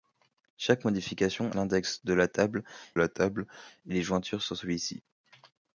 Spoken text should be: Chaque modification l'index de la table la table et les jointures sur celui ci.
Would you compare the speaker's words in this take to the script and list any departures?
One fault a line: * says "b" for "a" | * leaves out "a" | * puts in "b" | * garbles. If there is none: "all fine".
all fine